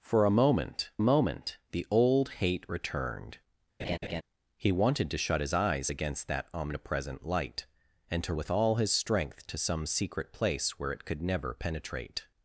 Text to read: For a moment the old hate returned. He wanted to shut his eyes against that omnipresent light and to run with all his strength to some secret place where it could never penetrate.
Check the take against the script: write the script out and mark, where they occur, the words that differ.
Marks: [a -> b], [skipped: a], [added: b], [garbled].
For a moment [added: moment] the old hate returned. He wanted to shut his eyes against that omnipresent light and to [skipped: run] with all his strength to some secret place where it could never penetrate.